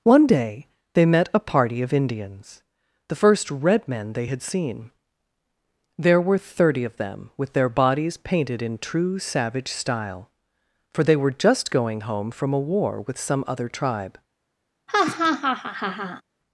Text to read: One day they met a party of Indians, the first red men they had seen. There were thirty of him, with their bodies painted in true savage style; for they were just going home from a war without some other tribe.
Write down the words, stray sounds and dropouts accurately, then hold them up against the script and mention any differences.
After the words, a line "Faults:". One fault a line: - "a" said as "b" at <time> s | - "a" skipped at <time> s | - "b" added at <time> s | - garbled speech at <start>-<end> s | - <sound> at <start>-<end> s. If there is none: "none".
One day they met a party of Indians, the first red men they had seen. There were thirty of them, with their bodies painted in true savage style; for they were just going home from a war with some other tribe.
Faults:
- "him" said as "them" at 7.0 s
- "without" said as "with" at 13.0 s
- laugh at 14.9-16.2 s